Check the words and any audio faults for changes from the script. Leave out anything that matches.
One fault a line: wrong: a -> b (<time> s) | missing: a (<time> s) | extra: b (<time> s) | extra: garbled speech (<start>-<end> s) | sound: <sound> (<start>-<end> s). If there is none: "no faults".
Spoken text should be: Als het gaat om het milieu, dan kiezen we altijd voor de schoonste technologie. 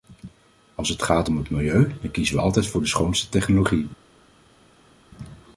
no faults